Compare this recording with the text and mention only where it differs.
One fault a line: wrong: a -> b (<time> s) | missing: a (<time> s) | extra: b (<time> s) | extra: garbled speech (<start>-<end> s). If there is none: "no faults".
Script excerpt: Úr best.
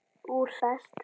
no faults